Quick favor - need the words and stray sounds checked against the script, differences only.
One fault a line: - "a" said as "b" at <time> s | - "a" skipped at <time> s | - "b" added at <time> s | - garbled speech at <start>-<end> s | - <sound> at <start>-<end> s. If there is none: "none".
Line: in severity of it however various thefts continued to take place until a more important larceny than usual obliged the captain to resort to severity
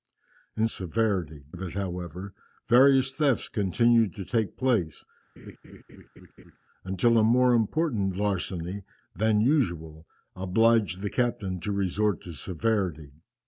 - laugh at 5.4-6.6 s